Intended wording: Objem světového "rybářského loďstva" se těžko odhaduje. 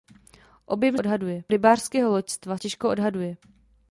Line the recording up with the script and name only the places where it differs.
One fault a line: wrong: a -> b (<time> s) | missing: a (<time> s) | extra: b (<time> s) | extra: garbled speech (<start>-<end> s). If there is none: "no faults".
wrong: světového -> odhaduje (1.0 s)
missing: se (2.6 s)